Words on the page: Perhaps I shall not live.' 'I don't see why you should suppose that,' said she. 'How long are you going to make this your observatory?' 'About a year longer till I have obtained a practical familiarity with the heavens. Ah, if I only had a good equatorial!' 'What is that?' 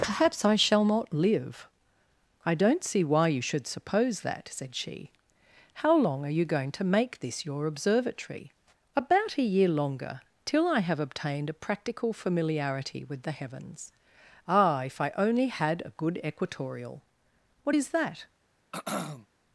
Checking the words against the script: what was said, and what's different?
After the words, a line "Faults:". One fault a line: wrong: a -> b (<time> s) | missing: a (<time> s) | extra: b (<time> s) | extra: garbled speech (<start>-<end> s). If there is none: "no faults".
Perhaps I shall not live.' 'I don't see why you should suppose that,' said she. 'How long are you going to make this your observatory?' 'About a year longer till I have obtained a practical familiarity with the heavens. Ah, if I only had a good equatorial!' 'What is that?'
Faults:
no faults